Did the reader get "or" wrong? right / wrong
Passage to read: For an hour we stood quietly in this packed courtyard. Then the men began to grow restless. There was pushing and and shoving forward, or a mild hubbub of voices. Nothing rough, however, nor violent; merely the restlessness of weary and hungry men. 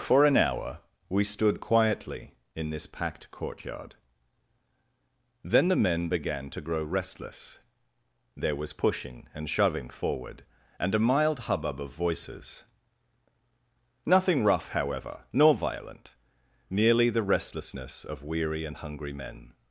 wrong